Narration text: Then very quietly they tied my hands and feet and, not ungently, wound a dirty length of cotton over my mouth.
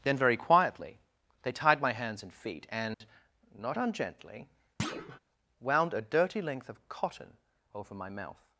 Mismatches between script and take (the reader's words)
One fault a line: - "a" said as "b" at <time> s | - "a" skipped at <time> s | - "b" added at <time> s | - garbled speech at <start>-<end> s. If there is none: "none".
none